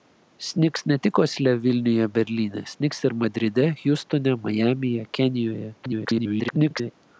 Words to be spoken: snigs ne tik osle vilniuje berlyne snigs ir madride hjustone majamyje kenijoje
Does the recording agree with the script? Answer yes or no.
no